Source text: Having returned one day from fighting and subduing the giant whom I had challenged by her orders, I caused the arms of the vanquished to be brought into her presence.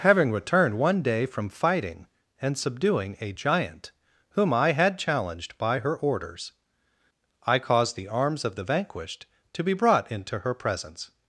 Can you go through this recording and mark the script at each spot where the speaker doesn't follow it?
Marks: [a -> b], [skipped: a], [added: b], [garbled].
Having returned one day from fighting and subduing [the -> a] giant whom I had challenged by her orders, I caused the arms of the vanquished to be brought into her presence.